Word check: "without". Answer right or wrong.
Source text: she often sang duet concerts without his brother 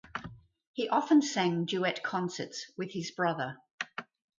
wrong